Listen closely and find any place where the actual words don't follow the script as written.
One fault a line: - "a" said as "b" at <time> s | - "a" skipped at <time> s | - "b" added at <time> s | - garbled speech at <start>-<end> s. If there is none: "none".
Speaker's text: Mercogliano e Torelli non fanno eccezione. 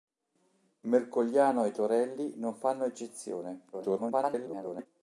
- garbled speech at 3.7-4.9 s